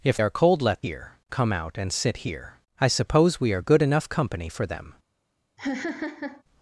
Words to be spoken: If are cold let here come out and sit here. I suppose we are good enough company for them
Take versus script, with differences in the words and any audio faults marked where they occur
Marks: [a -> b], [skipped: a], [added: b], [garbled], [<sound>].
If are cold let here come out and sit here. I suppose we are good enough company for them [laugh]